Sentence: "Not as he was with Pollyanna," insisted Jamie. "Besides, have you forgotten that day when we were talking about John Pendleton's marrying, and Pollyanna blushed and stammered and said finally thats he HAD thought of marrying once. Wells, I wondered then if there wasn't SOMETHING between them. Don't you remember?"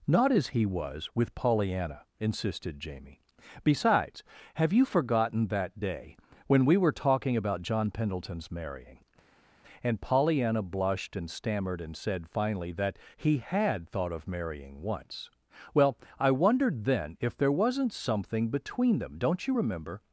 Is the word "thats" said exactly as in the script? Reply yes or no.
no